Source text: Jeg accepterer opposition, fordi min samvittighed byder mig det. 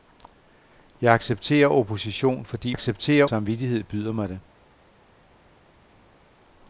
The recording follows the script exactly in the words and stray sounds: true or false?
false